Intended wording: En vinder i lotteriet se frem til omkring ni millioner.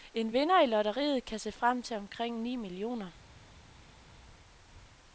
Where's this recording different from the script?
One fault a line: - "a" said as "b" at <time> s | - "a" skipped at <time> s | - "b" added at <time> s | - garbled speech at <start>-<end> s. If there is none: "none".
- "kan" added at 1.3 s